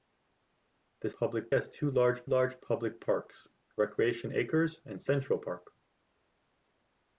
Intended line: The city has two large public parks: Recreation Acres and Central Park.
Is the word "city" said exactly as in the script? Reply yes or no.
no